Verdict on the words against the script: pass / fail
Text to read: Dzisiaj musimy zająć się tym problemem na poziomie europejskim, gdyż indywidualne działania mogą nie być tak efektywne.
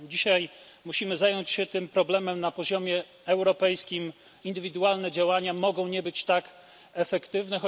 fail